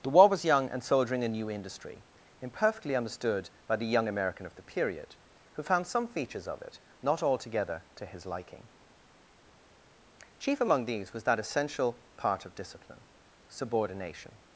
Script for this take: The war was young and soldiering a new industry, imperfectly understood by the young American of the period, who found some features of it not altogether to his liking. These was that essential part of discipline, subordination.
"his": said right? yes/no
yes